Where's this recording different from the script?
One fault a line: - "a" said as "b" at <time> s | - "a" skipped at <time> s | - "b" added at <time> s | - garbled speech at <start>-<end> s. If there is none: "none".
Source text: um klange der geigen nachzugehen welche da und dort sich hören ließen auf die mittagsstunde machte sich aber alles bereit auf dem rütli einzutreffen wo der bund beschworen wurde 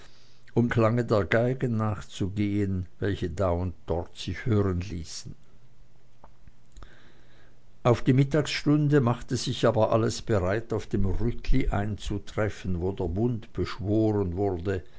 none